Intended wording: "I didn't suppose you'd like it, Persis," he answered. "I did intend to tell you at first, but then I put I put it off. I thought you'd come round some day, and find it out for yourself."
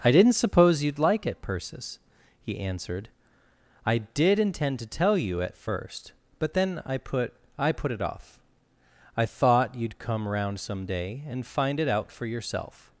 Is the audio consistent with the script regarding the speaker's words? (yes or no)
yes